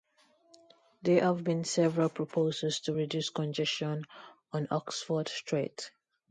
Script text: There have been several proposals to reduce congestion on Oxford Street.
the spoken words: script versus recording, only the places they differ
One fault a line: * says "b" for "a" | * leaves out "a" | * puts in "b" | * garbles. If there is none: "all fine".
all fine